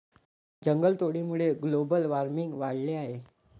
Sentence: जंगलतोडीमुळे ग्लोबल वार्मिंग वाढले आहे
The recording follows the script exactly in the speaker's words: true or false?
true